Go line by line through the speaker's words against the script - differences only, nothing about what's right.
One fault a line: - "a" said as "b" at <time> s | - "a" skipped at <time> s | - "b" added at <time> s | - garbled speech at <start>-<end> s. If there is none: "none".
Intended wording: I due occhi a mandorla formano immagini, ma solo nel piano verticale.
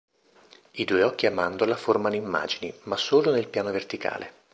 none